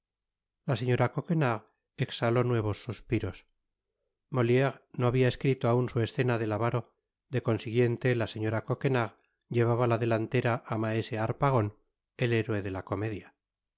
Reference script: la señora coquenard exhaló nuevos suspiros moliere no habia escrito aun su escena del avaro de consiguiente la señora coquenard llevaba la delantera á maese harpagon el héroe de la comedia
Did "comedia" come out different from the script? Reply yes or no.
no